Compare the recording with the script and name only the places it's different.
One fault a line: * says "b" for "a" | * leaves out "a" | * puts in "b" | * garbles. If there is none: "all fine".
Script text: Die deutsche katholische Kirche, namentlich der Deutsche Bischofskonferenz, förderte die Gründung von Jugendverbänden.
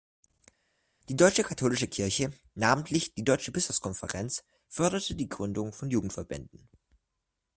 * says "die" for "der"